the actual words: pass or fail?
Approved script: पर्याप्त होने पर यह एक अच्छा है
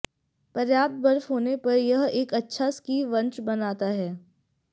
fail